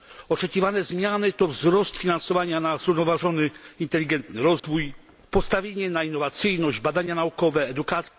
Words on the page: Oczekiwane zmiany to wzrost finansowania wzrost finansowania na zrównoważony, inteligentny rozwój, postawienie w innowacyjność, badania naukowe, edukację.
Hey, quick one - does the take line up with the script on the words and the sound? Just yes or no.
no